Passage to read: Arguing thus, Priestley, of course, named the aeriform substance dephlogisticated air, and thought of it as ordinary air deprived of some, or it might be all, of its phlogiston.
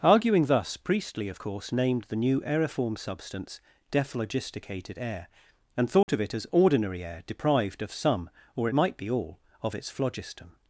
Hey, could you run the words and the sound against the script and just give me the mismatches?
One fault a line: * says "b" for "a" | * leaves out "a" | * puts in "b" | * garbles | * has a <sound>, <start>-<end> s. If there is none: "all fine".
* puts in "new"
* has a dropout, 6.0-6.1 s